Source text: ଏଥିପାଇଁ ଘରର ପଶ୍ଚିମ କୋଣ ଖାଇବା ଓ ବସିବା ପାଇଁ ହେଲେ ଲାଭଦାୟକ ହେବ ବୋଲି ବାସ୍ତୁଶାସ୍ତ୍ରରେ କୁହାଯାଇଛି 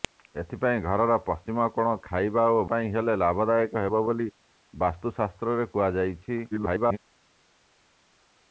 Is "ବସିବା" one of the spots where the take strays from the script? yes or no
yes